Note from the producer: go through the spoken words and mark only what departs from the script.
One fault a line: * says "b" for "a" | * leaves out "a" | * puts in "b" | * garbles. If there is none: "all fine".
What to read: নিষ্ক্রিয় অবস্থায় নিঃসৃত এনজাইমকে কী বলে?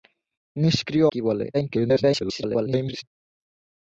* leaves out "অবস্থায় নিঃসৃত এনজাইমকে"
* garbles